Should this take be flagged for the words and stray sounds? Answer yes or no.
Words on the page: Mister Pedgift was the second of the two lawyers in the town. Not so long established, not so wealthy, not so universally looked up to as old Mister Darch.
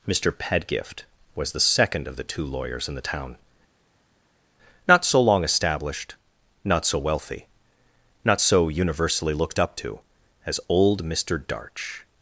no